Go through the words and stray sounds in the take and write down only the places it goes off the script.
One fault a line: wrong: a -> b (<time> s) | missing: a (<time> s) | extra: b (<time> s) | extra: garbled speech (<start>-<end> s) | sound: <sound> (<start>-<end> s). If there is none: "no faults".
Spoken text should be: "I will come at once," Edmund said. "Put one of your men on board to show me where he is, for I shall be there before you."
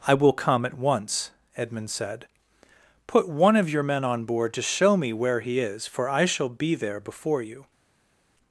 no faults